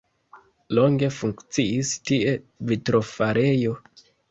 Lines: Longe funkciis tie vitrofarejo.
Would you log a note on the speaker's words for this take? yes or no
no